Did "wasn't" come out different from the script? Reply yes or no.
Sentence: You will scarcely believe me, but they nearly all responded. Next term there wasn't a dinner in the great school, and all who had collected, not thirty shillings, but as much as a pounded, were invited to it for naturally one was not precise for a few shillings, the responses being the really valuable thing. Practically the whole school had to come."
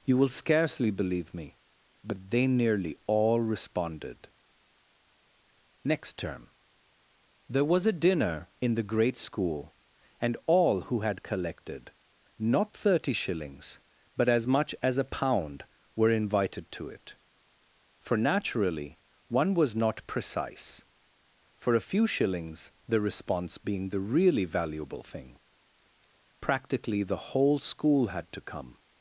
yes